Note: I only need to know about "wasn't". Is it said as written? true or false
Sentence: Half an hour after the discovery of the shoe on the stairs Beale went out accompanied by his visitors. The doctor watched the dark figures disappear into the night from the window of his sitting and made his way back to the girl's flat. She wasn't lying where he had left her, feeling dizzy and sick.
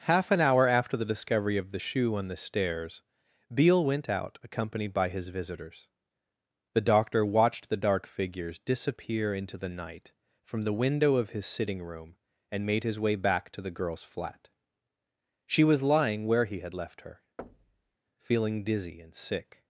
false